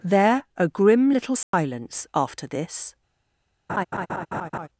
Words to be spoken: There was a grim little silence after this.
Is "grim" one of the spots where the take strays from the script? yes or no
no